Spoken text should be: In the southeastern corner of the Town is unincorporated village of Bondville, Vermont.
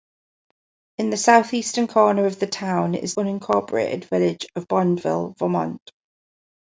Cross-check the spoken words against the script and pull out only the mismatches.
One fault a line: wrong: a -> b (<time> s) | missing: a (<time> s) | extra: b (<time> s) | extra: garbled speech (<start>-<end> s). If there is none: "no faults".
no faults